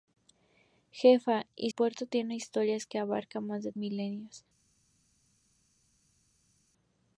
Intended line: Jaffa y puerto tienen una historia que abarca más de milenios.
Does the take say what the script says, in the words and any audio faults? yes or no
yes